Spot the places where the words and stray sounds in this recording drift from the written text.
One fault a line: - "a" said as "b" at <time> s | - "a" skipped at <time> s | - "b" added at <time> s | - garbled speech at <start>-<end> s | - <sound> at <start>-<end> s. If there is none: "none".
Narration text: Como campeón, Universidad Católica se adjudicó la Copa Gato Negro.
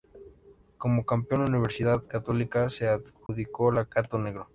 - dropout at 3.3-3.3 s
- "Copa" skipped at 3.9 s